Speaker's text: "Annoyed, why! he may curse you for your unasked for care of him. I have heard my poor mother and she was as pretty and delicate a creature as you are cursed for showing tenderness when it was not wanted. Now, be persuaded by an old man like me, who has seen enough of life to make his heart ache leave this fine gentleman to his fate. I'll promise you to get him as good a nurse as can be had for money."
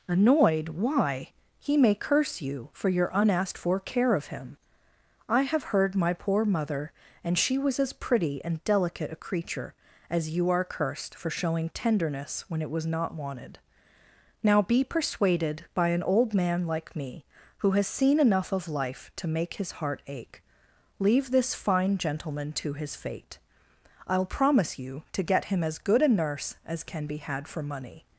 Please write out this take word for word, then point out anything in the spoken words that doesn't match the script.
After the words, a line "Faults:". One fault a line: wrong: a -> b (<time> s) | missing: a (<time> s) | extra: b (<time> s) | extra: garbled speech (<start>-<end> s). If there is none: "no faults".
"Annoyed, why! he may curse you for your unasked for care of him. I have heard my poor mother and she was as pretty and delicate a creature as you are cursed for showing tenderness when it was not wanted. Now, be persuaded by an old man like me, who has seen enough of life to make his heart ache leave this fine gentleman to his fate. I'll promise you to get him as good a nurse as can be had for money."
Faults:
no faults